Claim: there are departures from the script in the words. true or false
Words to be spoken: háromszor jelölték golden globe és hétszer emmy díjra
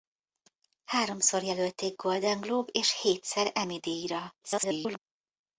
true